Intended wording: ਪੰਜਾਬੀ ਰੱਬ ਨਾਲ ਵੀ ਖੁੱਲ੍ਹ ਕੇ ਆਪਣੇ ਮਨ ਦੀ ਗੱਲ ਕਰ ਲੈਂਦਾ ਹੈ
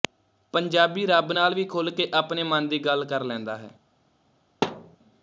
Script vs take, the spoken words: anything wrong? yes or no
no